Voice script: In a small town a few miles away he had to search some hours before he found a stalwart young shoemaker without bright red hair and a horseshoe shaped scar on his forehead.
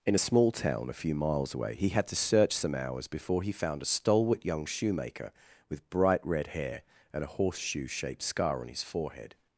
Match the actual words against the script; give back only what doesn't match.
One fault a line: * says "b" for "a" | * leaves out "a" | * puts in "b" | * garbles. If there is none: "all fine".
* says "with" for "without"